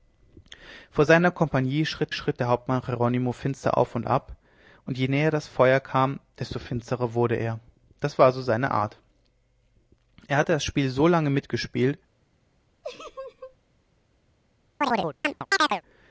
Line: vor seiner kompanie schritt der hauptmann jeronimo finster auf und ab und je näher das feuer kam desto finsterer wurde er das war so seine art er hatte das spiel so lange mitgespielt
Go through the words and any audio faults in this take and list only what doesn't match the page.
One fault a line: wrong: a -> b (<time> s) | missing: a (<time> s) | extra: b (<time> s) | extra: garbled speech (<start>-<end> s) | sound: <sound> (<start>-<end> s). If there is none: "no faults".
extra: schritt (2.1 s)
sound: laugh (12.8-13.6 s)
sound: chirp (14.8-15.8 s)